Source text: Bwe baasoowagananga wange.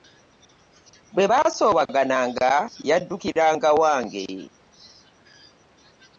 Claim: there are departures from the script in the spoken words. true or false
true